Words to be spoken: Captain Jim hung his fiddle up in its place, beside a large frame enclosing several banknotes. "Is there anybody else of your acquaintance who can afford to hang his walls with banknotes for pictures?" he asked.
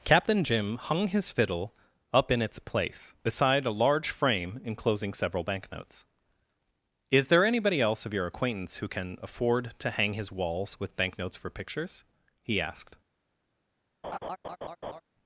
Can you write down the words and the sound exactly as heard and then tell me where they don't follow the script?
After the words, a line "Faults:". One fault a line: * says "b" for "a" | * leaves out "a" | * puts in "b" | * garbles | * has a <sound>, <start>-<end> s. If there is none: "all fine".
Captain Jim hung his fiddle up in its place, beside a large frame enclosing several banknotes. "Is there anybody else of your acquaintance who can afford to hang his walls with banknotes for pictures?" he asked.
Faults:
* has a laugh, 14.0-15.0 s